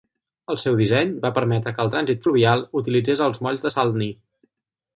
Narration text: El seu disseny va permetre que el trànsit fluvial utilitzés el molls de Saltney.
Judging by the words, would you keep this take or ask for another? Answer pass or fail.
fail